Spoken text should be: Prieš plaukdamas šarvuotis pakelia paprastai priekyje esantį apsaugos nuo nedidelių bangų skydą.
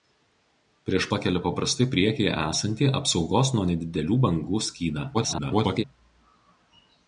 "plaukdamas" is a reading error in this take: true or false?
true